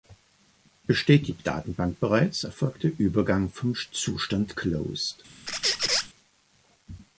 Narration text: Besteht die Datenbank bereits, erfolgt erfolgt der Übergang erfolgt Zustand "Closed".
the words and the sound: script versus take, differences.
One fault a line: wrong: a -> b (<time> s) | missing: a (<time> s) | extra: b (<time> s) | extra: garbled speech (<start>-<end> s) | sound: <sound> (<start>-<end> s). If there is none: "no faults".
missing: erfolgt (2.8 s)
wrong: erfolgt -> vom (3.6 s)
sound: squeak (5.5-6.1 s)